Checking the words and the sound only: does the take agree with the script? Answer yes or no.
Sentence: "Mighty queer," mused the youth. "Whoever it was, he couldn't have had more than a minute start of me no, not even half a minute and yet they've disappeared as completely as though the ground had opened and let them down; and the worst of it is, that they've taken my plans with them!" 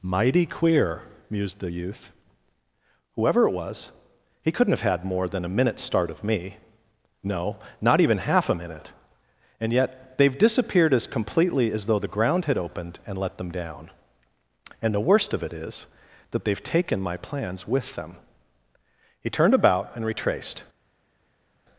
no